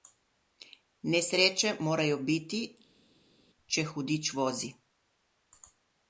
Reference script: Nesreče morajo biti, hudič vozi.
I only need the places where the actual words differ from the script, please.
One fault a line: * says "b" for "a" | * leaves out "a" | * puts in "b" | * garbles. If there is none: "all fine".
* puts in "če"